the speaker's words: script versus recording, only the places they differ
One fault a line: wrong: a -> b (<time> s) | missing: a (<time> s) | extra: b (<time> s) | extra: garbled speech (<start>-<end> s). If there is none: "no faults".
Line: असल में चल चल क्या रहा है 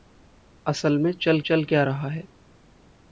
no faults